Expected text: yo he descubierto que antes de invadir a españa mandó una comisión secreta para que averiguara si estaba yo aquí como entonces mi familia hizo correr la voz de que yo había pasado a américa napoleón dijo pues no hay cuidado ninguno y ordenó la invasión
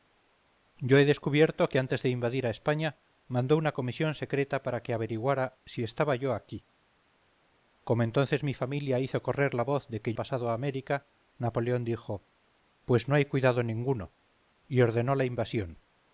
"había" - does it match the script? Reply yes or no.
no